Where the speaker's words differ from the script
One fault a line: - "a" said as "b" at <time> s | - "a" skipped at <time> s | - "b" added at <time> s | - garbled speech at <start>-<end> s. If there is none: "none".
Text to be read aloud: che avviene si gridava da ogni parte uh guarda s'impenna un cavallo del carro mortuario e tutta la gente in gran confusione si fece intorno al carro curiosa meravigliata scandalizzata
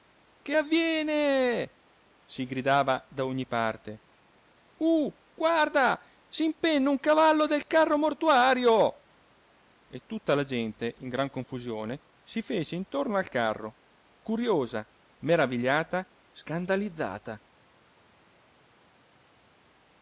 none